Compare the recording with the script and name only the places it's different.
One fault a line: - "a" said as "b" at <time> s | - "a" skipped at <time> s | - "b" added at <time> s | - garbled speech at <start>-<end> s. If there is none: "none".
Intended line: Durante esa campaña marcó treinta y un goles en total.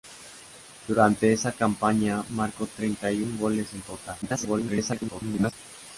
- garbled speech at 4.2-5.5 s